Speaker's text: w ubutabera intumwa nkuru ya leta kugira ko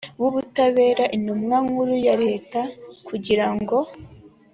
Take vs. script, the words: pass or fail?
fail